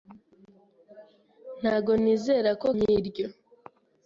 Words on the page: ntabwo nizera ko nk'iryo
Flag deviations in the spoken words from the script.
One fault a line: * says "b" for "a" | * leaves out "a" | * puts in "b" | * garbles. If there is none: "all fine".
all fine